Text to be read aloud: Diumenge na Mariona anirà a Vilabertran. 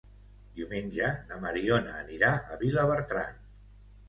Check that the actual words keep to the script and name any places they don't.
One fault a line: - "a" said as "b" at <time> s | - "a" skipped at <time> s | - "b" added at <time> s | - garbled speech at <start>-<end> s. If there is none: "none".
none